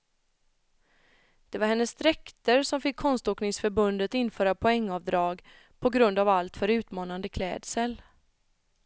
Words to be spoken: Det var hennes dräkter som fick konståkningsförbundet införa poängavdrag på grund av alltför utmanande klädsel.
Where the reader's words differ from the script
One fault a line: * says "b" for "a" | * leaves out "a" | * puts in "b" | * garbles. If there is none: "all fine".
all fine